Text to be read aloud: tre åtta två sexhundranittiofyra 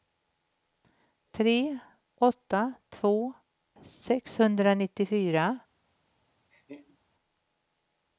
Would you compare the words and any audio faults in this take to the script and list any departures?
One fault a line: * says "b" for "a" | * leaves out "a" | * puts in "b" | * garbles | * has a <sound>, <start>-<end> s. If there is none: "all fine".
* has a laugh, 6.5-7.0 s